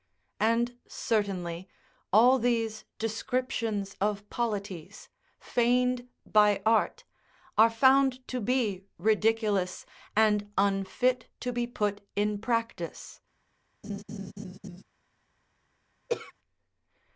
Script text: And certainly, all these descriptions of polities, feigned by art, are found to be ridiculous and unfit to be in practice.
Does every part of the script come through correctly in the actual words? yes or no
no